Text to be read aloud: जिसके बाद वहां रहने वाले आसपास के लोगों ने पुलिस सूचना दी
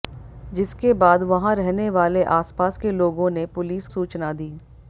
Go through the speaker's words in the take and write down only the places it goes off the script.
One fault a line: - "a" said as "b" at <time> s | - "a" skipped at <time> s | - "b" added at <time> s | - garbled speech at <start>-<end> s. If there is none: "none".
none